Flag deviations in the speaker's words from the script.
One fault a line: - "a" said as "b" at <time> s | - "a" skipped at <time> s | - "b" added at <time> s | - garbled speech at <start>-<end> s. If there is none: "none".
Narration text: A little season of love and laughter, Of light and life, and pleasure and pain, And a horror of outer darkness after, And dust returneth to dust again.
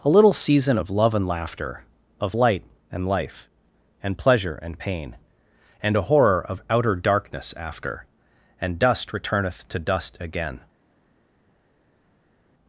none